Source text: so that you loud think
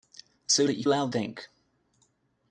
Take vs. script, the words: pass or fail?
pass